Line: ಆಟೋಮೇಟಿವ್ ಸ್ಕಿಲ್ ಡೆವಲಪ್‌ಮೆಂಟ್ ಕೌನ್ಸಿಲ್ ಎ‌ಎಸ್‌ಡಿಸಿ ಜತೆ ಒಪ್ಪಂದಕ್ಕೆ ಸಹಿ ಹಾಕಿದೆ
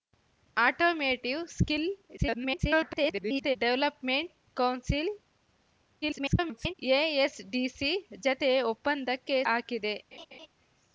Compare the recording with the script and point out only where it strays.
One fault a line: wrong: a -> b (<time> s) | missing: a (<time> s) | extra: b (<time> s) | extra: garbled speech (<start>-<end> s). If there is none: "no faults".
extra: garbled speech (2.2-3.6 s)
extra: garbled speech (6.0-6.7 s)
missing: ಸಹಿ (9.4 s)